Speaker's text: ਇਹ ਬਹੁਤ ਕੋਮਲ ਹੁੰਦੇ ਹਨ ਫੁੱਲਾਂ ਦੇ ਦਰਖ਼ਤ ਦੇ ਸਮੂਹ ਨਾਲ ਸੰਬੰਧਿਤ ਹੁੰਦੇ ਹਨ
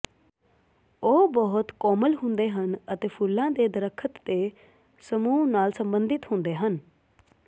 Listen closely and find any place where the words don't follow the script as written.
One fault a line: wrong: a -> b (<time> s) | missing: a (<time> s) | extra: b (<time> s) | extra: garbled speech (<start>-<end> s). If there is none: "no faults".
wrong: ਇਹ -> ਉਹ (1.0 s)
extra: ਅਤੇ (2.9 s)